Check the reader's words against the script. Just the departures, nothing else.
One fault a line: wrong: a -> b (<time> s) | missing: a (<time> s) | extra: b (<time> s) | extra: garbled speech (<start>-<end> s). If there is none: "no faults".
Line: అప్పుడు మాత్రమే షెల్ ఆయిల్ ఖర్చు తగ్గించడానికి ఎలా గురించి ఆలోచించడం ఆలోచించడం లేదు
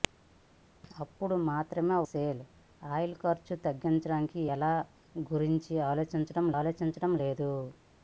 no faults